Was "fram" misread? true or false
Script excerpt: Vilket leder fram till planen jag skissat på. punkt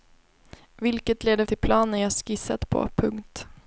true